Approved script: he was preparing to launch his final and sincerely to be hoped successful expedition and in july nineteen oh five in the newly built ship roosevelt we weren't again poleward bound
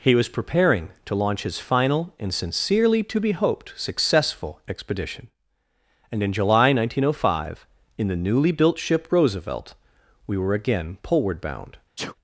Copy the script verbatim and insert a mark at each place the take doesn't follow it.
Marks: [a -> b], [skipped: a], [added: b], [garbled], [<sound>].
he was preparing to launch his final and sincerely to be hoped successful expedition and in july nineteen oh five in the newly built ship roosevelt we [weren't -> were] again poleward bound [sneeze]